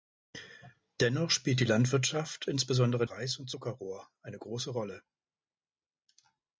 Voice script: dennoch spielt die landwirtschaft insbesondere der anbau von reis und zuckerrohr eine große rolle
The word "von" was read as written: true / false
false